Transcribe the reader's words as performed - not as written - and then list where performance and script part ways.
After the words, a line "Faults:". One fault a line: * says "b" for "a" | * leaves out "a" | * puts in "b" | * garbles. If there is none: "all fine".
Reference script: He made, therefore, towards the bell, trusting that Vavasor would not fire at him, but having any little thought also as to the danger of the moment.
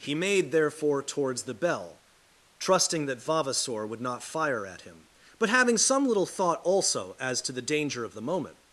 He made, therefore, towards the bell, trusting that Vavasor would not fire at him, but having some little thought also as to the danger of the moment.
Faults:
* says "some" for "any"